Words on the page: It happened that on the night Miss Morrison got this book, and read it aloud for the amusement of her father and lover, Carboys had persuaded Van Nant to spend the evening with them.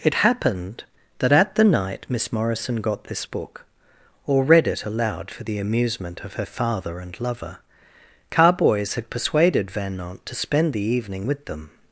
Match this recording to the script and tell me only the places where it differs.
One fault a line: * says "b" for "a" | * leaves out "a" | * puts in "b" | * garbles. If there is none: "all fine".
* says "at" for "on"
* says "or" for "and"